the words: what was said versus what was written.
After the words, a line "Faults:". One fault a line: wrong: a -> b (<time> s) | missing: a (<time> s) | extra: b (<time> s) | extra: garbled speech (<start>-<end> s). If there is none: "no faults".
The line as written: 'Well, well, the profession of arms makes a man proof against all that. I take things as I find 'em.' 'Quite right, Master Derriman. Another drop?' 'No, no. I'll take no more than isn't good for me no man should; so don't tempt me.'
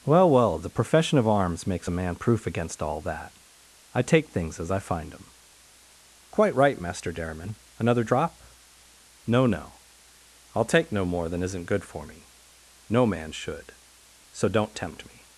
'Well, well, the profession of arms makes a man proof against all that. I take things as I find 'em.' 'Quite right, Master Derriman. Another drop?' 'No, no. I'll take no more than isn't good for me no man should; so don't tempt me.'
Faults:
no faults